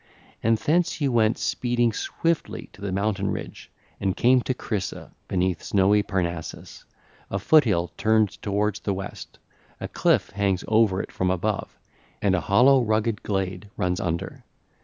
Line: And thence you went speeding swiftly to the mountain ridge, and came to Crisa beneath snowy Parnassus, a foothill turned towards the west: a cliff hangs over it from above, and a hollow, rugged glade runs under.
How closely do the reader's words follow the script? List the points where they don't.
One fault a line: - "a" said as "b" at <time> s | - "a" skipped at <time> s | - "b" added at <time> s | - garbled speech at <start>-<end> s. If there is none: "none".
none